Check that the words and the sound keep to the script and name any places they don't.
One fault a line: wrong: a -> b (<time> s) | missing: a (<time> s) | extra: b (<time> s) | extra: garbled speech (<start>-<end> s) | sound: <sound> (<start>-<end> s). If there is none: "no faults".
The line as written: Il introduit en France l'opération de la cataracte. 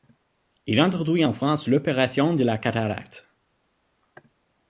no faults